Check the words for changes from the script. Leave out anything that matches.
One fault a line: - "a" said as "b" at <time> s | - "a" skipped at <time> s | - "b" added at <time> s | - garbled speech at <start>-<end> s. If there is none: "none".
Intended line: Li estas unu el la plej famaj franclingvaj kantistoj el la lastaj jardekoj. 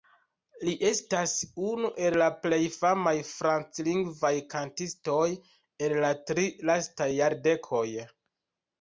- "tri" added at 6.3 s